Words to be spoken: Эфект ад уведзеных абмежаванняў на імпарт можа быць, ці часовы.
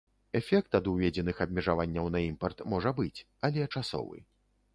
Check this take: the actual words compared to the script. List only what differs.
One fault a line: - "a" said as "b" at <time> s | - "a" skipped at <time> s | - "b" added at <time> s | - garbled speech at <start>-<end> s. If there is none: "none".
- "ці" said as "але" at 3.5 s